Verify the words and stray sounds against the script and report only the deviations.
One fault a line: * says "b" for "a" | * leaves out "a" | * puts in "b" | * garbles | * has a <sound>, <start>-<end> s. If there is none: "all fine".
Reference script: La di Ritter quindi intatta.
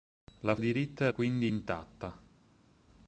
all fine